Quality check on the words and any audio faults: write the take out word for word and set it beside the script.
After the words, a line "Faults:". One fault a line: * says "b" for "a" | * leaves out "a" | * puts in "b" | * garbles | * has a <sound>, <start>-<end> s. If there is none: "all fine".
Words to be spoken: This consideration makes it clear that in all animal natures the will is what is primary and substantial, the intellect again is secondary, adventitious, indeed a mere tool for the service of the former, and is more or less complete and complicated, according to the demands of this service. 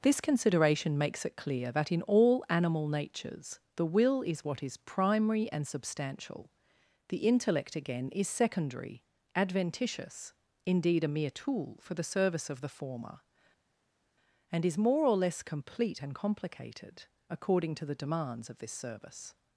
This consideration makes it clear that in all animal natures the will is what is primary and substantial, the intellect again is secondary, adventitious, indeed a mere tool for the service of the former, and is more or less complete and complicated, according to the demands of this service.
Faults:
all fine